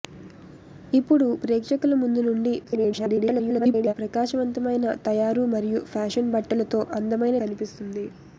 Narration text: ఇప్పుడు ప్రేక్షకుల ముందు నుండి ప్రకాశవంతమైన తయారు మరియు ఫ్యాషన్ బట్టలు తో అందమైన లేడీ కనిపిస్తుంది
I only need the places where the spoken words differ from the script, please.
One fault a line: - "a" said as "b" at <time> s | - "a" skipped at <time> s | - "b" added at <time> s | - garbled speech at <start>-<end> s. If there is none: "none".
- garbled speech at 2.6-3.9 s
- "లేడీ" skipped at 7.4 s